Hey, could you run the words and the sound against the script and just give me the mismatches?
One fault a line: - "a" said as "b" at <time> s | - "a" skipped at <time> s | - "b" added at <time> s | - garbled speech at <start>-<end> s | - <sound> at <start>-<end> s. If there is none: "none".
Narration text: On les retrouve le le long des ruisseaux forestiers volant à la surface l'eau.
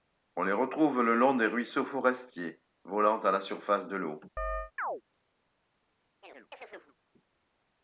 - "le" skipped at 1.1 s
- "de" added at 3.8 s
- chirp at 4.4-5.0 s
- chirp at 6.2-7.0 s